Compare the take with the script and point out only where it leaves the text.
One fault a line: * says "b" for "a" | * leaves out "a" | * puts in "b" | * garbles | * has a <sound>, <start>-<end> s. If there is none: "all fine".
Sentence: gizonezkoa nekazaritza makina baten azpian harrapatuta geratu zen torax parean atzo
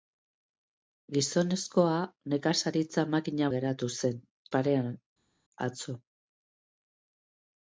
* leaves out "baten azpian harrapatuta"
* leaves out "torax"